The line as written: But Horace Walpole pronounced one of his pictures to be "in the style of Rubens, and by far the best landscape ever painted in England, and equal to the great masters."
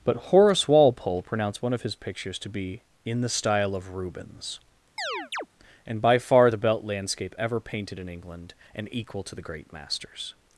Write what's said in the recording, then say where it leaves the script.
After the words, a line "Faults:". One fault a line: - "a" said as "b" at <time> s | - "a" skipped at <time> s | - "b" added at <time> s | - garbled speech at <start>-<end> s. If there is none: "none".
But Horace Walpole pronounced one of his pictures to be "in the style of Rubens, and by far the belt landscape ever painted in England, and equal to the great masters."
Faults:
- "best" said as "belt" at 6.6 s